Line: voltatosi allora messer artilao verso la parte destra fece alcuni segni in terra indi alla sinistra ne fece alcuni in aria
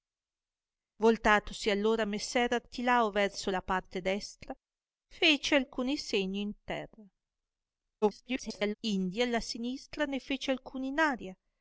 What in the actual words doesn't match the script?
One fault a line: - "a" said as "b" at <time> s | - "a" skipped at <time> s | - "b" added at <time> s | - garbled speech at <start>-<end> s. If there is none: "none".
- garbled speech at 8.0-8.7 s